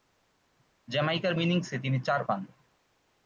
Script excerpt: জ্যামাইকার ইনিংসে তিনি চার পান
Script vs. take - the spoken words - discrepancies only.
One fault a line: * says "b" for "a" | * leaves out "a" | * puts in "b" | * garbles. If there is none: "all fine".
all fine